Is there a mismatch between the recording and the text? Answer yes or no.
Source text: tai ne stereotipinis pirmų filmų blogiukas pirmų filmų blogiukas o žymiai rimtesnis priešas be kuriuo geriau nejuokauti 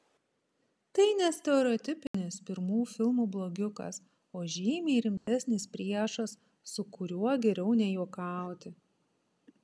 yes